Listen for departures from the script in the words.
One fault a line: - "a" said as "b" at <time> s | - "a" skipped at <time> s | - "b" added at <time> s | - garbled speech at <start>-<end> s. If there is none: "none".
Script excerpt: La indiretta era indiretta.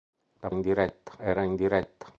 none